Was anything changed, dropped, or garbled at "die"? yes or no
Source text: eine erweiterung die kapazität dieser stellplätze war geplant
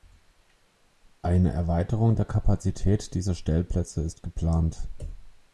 yes